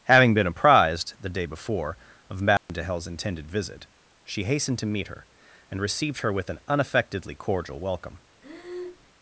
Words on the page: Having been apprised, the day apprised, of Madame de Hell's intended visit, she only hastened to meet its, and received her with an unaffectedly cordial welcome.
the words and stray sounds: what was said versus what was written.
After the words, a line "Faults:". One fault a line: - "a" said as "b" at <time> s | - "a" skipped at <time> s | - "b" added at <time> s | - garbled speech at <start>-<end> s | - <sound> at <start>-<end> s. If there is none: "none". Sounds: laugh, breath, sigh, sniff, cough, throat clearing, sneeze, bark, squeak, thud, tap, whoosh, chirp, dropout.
Having been apprised, the day before, of Madame de Hell's intended visit, she hastened to meet her, and received her with an unaffectedly cordial welcome.
Faults:
- "apprised" said as "before" at 1.4 s
- dropout at 2.6-2.7 s
- "only" skipped at 4.5 s
- "its" said as "her" at 5.1 s
- breath at 8.4-9.1 s